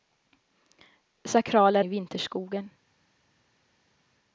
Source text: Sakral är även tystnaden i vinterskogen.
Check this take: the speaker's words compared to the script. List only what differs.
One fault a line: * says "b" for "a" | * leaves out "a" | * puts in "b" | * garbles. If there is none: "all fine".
* leaves out "även tystnaden"